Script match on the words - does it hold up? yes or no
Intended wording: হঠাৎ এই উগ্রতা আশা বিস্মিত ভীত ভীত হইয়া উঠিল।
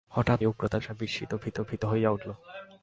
yes